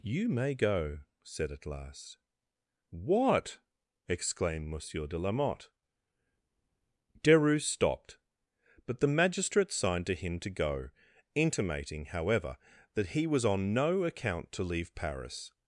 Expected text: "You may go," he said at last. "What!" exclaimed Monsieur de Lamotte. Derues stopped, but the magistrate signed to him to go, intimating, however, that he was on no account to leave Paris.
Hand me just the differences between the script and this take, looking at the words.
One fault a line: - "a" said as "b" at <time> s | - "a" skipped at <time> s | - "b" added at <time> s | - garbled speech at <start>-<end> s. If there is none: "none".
- "he" skipped at 1.0 s